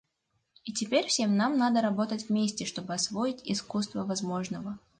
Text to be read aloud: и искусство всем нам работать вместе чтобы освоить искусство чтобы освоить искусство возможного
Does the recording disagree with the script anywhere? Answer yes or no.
yes